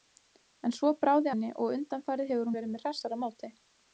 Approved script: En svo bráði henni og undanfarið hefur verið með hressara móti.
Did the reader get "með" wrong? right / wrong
right